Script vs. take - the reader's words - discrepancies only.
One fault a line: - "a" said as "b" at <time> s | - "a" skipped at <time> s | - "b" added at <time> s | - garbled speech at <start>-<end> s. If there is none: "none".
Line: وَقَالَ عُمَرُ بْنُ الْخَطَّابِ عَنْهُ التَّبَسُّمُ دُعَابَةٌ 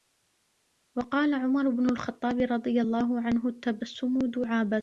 - "رَضِيَ اللَّهُ" added at 2.4 s